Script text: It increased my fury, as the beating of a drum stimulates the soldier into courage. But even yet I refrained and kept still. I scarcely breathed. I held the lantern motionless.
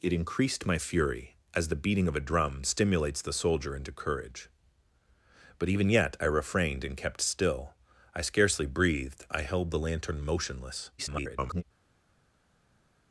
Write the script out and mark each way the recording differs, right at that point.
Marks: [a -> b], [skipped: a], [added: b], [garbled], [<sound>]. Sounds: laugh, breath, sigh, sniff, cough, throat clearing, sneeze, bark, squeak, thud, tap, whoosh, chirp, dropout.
It increased my fury, as the beating of a drum stimulates the soldier into courage. But even yet I refrained and kept still. I scarcely breathed. I held the lantern motionless. [garbled]